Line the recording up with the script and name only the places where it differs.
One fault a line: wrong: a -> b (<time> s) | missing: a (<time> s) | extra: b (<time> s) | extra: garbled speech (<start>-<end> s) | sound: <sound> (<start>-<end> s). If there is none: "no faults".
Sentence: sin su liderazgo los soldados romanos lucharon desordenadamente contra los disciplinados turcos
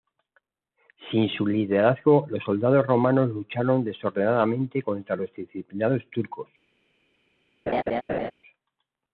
sound: laugh (7.7-8.3 s)